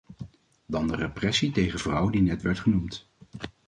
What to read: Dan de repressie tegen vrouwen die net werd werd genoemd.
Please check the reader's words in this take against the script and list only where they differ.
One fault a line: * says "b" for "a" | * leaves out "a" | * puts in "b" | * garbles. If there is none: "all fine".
* leaves out "werd"